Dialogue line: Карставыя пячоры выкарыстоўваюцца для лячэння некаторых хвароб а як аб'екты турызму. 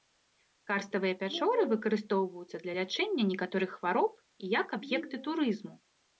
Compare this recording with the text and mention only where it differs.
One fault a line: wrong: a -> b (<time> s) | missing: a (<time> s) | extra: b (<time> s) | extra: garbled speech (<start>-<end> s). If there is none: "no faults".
wrong: а -> і (4.2 s)